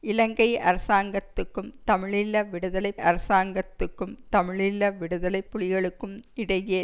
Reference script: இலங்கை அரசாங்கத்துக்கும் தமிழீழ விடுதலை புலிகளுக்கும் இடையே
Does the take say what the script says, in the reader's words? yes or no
no